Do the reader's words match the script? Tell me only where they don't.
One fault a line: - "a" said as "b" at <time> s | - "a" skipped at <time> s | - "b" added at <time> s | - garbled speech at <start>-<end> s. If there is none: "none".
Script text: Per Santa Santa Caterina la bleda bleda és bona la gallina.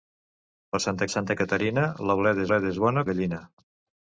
none